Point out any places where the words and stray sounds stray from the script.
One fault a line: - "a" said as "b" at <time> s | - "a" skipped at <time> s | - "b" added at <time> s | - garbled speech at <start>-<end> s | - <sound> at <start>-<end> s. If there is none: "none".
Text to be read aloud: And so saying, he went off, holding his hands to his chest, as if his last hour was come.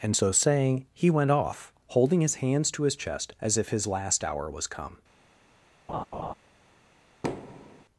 - laugh at 5.9-6.3 s
- thud at 7.2-7.8 s